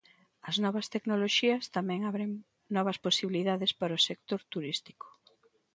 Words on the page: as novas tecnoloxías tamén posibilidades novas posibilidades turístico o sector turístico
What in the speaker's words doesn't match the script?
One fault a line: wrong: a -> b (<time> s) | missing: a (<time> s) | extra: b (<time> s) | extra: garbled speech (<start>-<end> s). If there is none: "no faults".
wrong: posibilidades -> abren (2.1 s)
wrong: turístico -> para (3.8 s)